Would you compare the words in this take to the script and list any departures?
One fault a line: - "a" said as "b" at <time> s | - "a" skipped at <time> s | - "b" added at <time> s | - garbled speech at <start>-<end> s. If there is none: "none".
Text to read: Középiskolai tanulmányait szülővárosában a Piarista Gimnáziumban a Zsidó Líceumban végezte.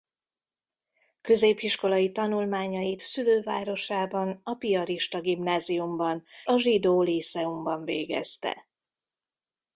none